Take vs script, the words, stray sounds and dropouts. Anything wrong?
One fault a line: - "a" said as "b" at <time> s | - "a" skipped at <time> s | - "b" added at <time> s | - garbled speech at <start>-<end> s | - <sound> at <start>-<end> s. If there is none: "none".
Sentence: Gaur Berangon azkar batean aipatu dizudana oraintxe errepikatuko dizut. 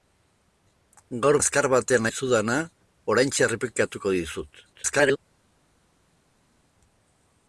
- "Berangon" skipped at 1.4 s
- "aipatu" skipped at 2.1 s
- garbled speech at 4.7-5.2 s